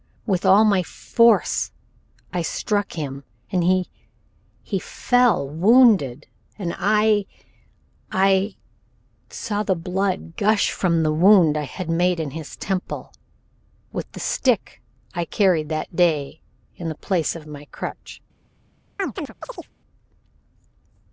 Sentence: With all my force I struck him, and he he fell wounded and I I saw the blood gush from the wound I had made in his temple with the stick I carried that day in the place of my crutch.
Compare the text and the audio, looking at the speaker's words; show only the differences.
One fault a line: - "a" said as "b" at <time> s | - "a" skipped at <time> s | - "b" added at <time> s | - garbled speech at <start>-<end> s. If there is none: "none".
none